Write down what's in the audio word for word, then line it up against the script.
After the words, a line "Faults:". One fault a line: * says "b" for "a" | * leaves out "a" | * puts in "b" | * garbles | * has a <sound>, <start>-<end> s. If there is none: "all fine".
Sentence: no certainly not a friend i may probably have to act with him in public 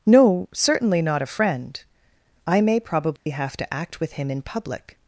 no certainly not a friend i may probably have to act with him in public
Faults:
* has a dropout, 3.2-3.3 s